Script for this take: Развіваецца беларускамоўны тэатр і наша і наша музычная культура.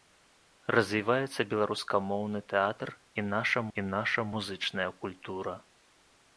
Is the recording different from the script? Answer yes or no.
no